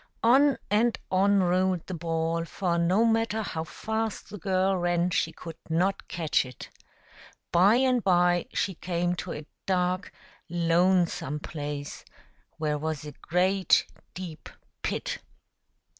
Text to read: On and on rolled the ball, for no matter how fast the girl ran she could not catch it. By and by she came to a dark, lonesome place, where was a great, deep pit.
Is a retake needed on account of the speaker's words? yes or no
no